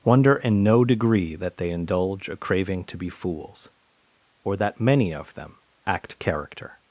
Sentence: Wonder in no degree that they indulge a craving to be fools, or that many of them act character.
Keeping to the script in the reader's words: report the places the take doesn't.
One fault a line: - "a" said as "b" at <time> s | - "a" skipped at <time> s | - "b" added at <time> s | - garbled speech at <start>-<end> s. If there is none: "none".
none